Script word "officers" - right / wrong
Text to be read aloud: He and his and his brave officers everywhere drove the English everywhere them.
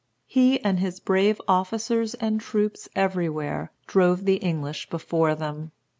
wrong